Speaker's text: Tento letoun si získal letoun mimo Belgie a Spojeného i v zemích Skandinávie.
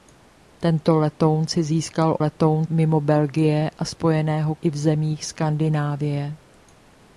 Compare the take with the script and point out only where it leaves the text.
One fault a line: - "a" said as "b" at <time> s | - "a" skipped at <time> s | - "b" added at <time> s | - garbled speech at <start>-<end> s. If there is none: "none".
none